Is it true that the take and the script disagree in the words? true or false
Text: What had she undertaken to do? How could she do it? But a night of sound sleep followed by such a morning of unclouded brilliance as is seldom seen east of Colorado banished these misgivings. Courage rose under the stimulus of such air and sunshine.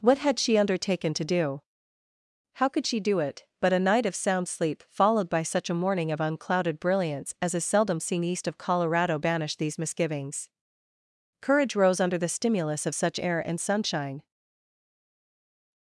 false